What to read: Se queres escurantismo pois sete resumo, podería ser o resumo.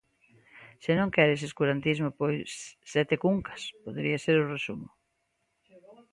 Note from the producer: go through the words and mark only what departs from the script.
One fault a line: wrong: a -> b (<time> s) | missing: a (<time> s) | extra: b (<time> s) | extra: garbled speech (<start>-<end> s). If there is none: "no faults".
extra: non (1.0 s)
wrong: resumo -> cuncas (3.2 s)